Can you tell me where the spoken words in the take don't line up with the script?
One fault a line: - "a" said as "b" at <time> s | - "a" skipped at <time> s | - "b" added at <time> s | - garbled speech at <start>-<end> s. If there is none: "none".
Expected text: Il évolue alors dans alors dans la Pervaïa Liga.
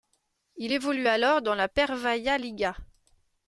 - "alors dans" skipped at 1.5 s